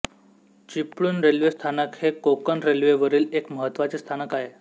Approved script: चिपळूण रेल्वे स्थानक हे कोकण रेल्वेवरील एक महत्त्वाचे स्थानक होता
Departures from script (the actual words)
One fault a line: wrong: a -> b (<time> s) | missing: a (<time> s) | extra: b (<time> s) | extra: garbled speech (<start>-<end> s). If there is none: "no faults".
wrong: होता -> आहे (4.3 s)